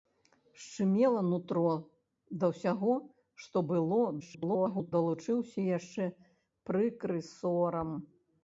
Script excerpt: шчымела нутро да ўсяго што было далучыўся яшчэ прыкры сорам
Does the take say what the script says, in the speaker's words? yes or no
no